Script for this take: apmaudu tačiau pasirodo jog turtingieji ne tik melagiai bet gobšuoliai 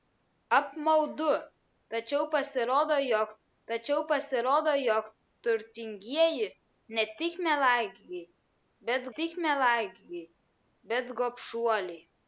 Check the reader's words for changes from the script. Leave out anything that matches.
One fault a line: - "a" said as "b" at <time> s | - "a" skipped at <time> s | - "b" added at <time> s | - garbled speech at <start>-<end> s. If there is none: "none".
- "tačiau pasirodo jog" added at 3.7 s
- "tik melagiai bet" added at 9.1 s